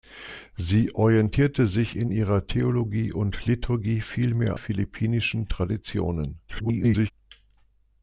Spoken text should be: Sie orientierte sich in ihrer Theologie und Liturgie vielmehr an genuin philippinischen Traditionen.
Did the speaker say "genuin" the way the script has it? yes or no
no